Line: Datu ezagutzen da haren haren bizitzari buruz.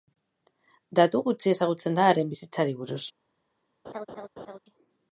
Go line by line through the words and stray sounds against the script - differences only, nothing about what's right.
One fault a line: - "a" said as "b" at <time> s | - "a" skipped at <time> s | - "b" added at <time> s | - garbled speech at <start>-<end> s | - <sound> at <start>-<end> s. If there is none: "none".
- "gutxi" added at 1.3 s
- "haren" skipped at 2.4 s
- laugh at 3.8-4.6 s